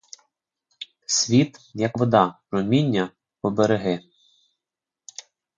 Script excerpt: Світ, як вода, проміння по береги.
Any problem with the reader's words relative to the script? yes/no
no